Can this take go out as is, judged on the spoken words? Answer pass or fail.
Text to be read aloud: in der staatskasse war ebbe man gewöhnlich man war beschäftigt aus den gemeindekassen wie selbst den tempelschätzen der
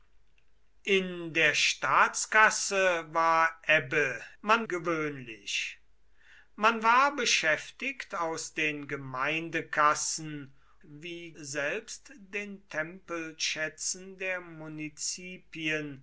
pass